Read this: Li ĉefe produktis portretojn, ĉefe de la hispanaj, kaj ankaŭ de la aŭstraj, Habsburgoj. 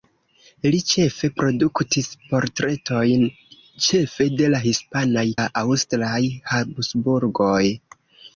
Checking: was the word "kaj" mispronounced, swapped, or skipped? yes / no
yes